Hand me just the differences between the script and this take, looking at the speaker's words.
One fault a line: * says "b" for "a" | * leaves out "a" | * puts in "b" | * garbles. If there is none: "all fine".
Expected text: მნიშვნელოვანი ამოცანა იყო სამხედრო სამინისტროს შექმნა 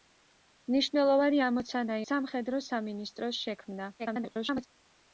* leaves out "იყო"
* garbles